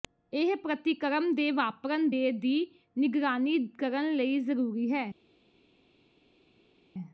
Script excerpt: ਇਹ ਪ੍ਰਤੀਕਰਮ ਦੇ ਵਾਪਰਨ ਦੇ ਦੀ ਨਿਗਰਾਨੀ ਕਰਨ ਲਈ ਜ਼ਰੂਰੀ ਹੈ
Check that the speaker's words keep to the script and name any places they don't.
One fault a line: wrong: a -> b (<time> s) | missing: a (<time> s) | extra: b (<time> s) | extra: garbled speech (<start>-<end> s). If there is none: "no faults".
no faults